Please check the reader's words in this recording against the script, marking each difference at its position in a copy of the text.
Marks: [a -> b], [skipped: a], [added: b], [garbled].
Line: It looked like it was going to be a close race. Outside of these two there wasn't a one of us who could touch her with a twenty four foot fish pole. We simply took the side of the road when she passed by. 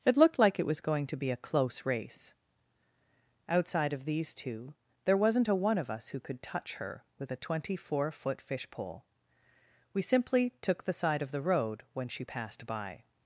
It looked like it was going to be a close race. Outside of these two there wasn't a one of us who could touch her with a twenty four foot fish pole. We simply took the side of the road when she passed by.